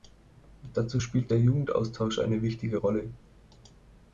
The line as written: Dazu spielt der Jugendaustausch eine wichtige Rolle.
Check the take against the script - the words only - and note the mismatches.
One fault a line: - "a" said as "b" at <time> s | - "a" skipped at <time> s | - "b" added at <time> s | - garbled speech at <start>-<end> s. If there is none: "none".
none